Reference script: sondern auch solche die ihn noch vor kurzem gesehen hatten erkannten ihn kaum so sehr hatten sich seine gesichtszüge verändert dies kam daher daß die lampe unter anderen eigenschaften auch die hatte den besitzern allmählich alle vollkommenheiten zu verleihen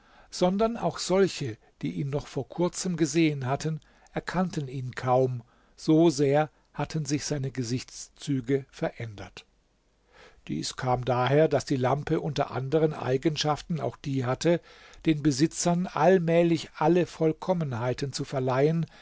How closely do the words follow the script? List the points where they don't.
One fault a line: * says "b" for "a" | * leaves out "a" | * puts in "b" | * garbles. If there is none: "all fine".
all fine